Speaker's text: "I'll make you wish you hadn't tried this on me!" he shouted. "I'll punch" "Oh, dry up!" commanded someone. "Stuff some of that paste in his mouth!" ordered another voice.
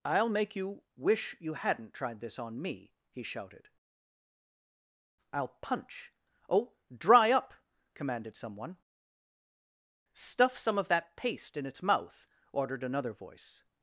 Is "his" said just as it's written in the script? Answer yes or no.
no